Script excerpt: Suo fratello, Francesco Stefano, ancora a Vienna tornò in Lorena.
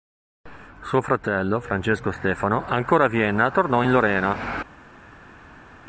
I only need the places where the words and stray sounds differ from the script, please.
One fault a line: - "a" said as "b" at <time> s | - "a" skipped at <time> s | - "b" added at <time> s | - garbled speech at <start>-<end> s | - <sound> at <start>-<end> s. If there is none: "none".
none